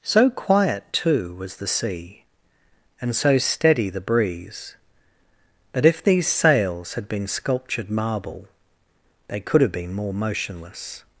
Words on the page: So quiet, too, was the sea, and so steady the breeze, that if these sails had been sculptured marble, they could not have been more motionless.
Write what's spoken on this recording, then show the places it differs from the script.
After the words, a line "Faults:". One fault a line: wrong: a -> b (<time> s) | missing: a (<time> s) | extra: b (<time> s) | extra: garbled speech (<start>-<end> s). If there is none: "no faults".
So quiet, too, was the sea, and so steady the breeze, that if these sails had been sculptured marble, they could have been more motionless.
Faults:
missing: not (9.6 s)